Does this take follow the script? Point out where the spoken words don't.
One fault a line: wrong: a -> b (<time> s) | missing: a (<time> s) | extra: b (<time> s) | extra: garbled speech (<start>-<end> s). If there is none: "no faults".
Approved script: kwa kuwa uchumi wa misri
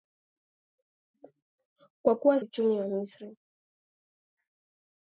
no faults